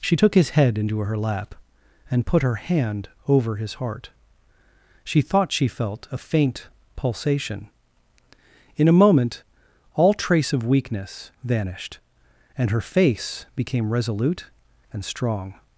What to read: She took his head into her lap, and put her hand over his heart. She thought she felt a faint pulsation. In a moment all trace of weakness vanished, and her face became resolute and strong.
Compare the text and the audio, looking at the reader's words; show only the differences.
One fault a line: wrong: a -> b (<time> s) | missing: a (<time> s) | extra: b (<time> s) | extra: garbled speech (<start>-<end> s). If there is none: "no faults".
no faults